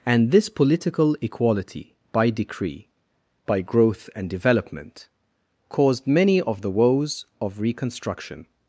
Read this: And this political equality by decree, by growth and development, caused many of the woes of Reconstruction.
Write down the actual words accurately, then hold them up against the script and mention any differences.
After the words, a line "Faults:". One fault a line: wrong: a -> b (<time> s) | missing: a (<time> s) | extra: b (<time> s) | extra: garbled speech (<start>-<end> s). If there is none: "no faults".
And this political equality by decree, by growth and development, caused many of the woes of Reconstruction.
Faults:
no faults